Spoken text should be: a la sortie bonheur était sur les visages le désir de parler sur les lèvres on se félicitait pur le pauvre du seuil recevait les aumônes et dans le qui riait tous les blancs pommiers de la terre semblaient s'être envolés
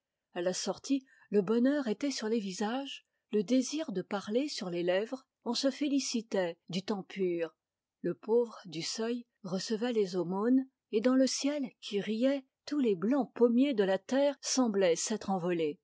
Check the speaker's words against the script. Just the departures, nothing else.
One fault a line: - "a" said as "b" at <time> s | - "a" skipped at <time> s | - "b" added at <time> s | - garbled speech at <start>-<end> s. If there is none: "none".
- "le" added at 1.3 s
- "du temps" added at 6.7 s
- "ciel" added at 11.2 s